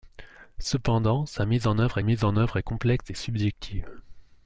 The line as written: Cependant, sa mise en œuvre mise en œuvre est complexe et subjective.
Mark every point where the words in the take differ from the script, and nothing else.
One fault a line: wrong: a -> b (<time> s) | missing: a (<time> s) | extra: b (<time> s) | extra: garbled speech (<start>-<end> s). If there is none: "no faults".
no faults